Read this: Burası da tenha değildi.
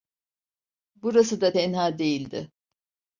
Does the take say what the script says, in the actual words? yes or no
yes